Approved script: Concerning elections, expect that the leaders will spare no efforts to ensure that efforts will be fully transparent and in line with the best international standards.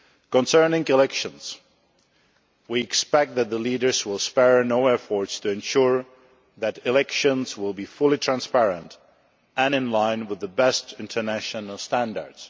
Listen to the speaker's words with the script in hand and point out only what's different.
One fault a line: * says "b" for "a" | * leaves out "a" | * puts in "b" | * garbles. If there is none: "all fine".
* puts in "we"
* says "elections" for "efforts"